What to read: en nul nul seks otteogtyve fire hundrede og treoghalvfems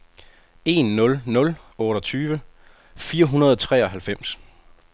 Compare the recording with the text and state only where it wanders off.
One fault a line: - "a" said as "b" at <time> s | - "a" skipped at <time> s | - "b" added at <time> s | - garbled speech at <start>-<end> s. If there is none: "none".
- "seks" skipped at 1.6 s